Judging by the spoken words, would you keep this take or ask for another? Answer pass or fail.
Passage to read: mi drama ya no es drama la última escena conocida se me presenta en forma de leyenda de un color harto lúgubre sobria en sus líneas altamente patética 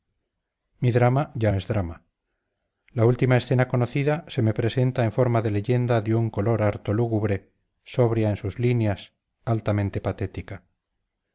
fail